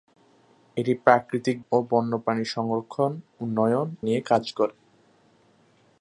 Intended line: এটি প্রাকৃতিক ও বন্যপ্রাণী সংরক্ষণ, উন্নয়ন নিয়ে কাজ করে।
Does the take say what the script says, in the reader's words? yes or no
yes